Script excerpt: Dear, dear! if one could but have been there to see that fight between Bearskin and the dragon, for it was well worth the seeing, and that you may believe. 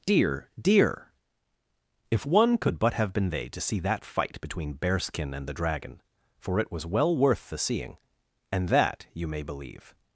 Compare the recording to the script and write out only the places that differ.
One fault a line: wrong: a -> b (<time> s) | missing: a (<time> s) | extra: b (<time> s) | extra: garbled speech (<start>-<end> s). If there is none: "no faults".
wrong: there -> they (3.3 s)